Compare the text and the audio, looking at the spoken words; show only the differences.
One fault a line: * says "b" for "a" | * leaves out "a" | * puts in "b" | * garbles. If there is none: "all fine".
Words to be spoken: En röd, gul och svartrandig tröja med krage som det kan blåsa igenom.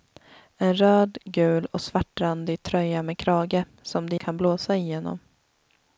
all fine